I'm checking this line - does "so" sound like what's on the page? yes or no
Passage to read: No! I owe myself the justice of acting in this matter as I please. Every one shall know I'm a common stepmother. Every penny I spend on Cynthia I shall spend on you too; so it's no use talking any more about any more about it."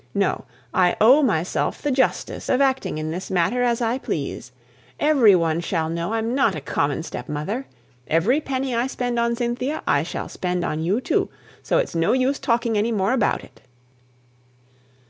yes